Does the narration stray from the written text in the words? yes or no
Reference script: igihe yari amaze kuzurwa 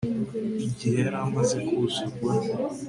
no